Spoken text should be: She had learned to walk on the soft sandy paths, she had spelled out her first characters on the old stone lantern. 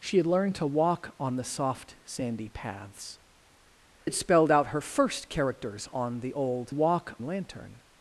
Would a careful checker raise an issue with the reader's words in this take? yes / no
yes